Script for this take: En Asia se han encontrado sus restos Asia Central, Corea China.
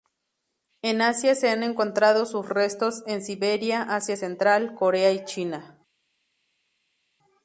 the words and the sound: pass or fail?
fail